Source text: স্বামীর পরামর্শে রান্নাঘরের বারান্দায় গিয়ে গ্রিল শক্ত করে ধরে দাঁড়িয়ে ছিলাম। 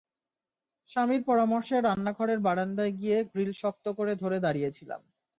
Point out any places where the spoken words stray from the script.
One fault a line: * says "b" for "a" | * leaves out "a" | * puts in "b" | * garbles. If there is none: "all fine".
all fine